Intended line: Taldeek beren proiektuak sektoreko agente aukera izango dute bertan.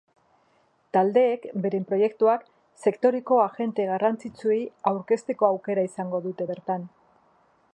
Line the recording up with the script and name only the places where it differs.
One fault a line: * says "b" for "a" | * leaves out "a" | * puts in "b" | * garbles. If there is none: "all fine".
* puts in "garrantzitsuei aurkezteko"